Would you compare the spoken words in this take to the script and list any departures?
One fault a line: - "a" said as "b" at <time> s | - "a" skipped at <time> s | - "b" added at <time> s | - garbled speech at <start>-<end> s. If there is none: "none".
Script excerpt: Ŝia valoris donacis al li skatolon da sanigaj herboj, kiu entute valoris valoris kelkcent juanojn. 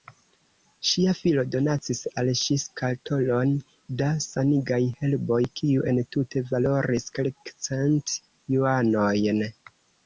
- "valoris" said as "filo" at 1.2 s
- "li" said as "ŝi" at 2.4 s
- "valoris" skipped at 7.1 s